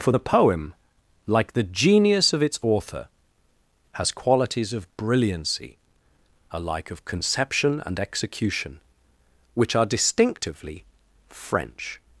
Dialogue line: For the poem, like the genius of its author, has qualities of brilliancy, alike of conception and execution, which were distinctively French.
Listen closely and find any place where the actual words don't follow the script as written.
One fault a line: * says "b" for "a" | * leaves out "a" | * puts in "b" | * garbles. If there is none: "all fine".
* says "are" for "were"